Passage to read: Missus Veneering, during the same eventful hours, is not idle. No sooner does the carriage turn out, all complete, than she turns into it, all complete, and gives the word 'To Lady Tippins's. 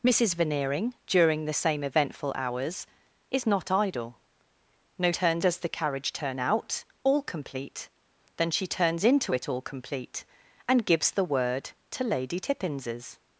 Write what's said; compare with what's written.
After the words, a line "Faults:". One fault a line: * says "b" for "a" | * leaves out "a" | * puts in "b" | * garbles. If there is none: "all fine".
Missus Veneering, during the same eventful hours, is not idle. No turns does the carriage turn out, all complete, than she turns into it, all complete, and gives the word 'To Lady Tippins's.
Faults:
* says "turns" for "sooner"